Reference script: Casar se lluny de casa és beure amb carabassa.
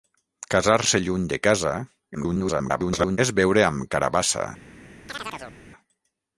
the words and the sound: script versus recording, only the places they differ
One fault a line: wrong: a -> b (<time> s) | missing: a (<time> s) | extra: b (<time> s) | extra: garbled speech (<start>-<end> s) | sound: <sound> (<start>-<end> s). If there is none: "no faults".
extra: garbled speech (2.1-3.2 s)
sound: chirp (5.1-5.6 s)